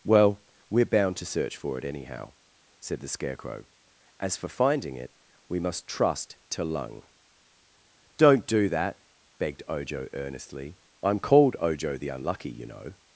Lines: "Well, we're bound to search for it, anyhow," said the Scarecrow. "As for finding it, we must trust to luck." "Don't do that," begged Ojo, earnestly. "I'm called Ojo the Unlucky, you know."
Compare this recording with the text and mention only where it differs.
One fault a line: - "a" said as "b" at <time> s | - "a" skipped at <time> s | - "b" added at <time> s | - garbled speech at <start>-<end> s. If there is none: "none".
- "luck" said as "lung" at 6.6 s